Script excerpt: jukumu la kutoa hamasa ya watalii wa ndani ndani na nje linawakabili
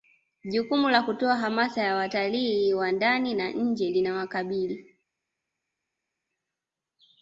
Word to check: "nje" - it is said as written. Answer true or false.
true